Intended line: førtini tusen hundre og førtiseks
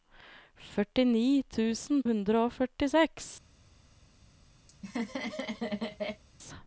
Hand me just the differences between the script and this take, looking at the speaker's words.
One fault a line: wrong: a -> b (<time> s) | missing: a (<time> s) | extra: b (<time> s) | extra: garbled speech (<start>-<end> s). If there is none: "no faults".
no faults